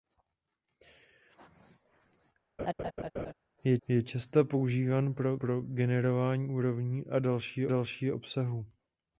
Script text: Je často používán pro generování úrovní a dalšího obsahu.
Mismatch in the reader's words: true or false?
true